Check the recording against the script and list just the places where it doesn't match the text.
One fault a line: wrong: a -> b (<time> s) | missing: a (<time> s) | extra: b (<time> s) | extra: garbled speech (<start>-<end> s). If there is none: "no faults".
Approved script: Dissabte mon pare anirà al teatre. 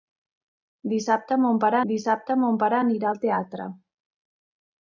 extra: dissabte mon pare (1.9 s)